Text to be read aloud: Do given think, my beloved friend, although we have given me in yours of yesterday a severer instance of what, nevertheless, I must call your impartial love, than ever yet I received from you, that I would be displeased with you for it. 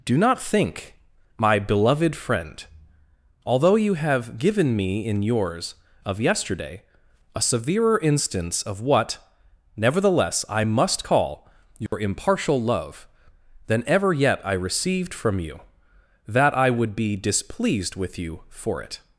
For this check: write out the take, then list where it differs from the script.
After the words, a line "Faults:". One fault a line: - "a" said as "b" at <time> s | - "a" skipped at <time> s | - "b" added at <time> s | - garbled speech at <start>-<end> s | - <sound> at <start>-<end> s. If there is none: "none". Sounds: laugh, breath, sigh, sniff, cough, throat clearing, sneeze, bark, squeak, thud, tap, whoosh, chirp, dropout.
Do not think, my beloved friend, although you have given me in yours of yesterday a severer instance of what, nevertheless, I must call your impartial love, than ever yet I received from you, that I would be displeased with you for it.
Faults:
- "given" said as "not" at 0.2 s
- "we" said as "you" at 3.8 s
- dropout at 11.9-11.9 s